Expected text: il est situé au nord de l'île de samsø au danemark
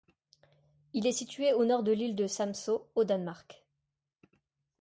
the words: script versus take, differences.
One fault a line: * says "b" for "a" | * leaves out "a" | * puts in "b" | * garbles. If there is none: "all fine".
all fine